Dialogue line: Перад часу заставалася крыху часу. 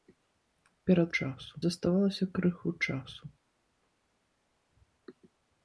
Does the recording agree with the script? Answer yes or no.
yes